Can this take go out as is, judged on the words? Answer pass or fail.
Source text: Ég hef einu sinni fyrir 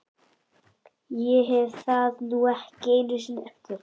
fail